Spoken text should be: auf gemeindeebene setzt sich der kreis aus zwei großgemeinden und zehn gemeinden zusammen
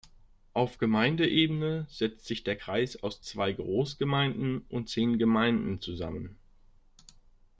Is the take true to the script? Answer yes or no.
yes